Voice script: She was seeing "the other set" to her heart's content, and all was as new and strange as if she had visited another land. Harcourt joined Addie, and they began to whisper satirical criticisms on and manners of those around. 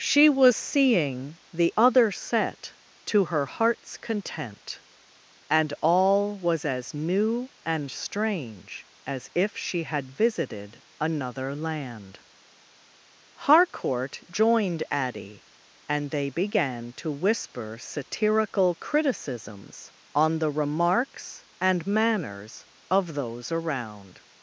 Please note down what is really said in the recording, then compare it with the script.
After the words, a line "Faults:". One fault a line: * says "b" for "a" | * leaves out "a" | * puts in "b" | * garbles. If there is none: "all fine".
She was seeing "the other set" to her heart's content, and all was as new and strange as if she had visited another land. Harcourt joined Addie, and they began to whisper satirical criticisms on the remarks and manners of those around.
Faults:
* puts in "the remarks"